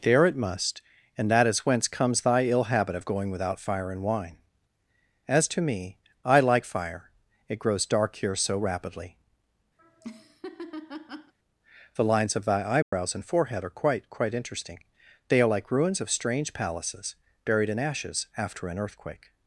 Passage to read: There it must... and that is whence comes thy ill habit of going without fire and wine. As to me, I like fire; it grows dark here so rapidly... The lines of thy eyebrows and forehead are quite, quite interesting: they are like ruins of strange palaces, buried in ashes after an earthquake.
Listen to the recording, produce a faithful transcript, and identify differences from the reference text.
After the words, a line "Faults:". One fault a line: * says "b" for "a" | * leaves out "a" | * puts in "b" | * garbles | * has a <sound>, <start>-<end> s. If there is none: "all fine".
There it must... and that is whence comes thy ill habit of going without fire and wine. As to me, I like fire; it grows dark here so rapidly... The lines of thy eyebrows and forehead are quite, quite interesting: they are like ruins of strange palaces, buried in ashes after an earthquake.
Faults:
* has a laugh, 9.8-11.3 s
* has a dropout, 12.8-12.9 s